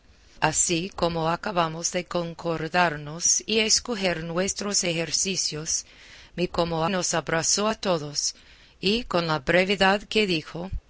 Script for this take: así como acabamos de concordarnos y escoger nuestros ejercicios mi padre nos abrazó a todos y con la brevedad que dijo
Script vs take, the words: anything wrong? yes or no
yes